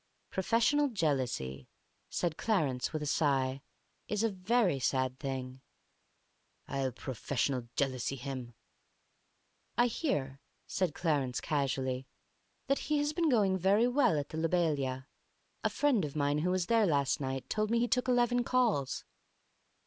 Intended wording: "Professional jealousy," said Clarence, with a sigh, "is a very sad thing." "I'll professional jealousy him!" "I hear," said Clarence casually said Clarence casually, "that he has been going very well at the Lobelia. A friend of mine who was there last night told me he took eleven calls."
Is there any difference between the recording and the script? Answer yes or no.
yes